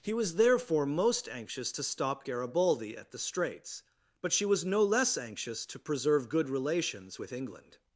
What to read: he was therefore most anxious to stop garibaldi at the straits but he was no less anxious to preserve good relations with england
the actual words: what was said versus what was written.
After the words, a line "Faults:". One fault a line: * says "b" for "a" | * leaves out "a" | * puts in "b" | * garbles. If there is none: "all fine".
he was therefore most anxious to stop garibaldi at the straits but she was no less anxious to preserve good relations with england
Faults:
* says "she" for "he"